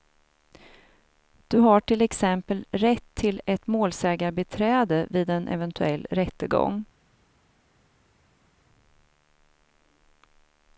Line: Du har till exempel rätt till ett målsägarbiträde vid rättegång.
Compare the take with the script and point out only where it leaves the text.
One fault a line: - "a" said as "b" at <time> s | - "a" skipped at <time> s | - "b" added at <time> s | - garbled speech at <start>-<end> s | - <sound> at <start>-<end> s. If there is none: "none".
- "en eventuell" added at 5.3 s